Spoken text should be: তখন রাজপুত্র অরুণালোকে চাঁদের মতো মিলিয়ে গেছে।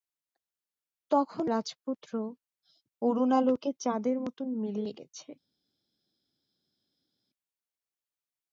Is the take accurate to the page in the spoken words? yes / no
yes